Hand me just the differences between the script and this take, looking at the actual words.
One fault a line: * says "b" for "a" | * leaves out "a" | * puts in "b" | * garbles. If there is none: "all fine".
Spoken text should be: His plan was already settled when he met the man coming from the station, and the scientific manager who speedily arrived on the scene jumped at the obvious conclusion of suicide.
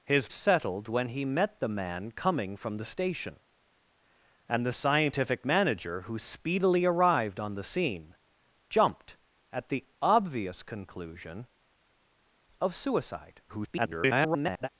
* leaves out "plan was already"
* garbles